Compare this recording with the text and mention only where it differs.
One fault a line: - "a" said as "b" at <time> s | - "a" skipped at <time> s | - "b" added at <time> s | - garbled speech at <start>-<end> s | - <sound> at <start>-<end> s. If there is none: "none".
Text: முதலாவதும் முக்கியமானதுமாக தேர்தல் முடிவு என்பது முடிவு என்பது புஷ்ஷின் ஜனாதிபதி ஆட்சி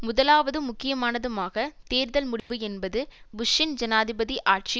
- dropout at 2.4-2.5 s
- "முடிவு என்பது" skipped at 3.0 s